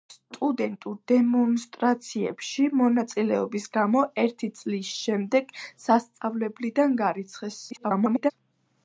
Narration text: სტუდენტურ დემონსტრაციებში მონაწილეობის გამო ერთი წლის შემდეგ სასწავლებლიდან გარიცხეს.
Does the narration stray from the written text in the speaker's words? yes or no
yes